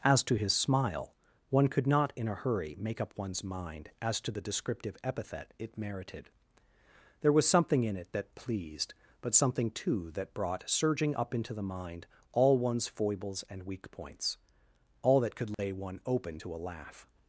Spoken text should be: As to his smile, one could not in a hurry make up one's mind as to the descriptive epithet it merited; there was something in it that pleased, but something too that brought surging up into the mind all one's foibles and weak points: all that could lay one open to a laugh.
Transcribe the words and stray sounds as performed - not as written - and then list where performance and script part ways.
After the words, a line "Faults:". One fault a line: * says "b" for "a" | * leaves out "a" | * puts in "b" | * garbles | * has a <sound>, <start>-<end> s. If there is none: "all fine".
As to his smile, one could not in a hurry make up one's mind as to the descriptive epithet it merited; there was something in it that pleased, but something too that brought surging up into the mind all one's foibles and weak points: all that could lay one open to a laugh.
Faults:
* has a dropout, 15.5-15.6 s